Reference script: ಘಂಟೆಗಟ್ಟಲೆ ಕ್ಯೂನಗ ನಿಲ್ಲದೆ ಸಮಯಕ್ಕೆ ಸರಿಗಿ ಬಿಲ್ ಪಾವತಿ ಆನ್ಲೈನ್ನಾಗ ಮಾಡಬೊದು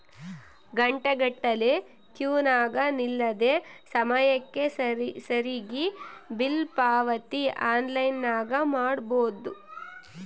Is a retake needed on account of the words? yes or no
no